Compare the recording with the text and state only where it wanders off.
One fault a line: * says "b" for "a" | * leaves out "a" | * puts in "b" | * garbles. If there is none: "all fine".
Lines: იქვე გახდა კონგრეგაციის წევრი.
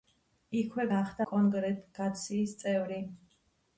all fine